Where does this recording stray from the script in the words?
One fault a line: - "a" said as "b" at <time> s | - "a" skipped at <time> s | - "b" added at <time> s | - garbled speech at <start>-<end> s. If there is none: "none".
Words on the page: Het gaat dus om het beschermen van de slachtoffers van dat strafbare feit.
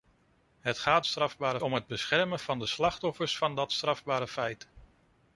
- "dus" said as "strafbare" at 1.1 s